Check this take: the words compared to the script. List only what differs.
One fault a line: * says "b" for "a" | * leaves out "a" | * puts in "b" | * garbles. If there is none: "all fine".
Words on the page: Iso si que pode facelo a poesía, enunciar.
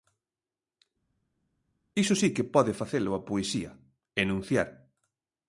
all fine